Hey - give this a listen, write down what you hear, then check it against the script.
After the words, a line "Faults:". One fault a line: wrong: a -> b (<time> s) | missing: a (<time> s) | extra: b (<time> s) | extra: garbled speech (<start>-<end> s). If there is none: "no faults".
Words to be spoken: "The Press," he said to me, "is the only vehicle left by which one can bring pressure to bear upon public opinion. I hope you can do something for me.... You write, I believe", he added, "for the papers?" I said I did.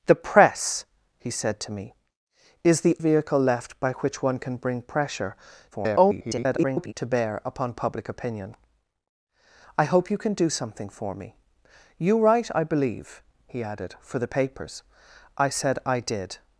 "The Press," he said to me, "is the vehicle left by which one can bring pressure [garbled] to bear upon public opinion. I hope you can do something for me.... You write, I believe", he added, "for the papers?" I said I did.
Faults:
missing: only (3.0 s)
extra: garbled speech (5.7-6.9 s)